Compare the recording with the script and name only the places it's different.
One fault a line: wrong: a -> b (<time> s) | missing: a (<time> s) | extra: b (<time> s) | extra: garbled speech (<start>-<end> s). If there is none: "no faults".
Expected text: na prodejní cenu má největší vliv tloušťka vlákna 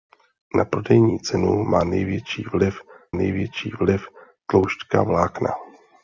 extra: největší vliv (3.1 s)